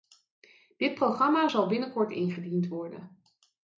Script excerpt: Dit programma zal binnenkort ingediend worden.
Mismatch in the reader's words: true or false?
false